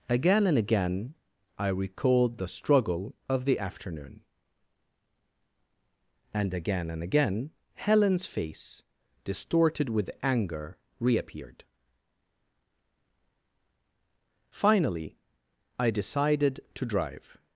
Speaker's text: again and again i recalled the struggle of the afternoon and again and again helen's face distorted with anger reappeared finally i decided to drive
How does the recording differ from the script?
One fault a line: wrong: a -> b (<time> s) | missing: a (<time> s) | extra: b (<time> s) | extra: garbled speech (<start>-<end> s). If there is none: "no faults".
no faults